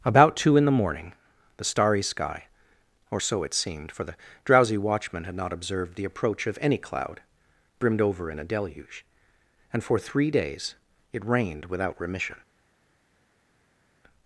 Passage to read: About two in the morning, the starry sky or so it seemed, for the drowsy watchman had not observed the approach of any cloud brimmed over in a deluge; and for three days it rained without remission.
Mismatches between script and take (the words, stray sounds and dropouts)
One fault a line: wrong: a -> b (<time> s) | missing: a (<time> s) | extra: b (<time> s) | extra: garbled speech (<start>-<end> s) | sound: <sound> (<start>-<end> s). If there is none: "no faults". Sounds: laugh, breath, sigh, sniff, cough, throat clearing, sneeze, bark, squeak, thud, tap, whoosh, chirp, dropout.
no faults